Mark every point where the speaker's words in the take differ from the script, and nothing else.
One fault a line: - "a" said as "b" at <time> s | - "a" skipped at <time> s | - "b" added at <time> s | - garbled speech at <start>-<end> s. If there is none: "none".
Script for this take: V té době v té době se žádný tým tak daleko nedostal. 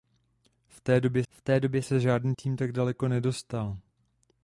none